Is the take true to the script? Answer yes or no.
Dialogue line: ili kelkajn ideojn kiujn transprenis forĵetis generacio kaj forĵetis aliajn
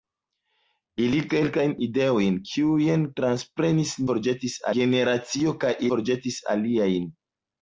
yes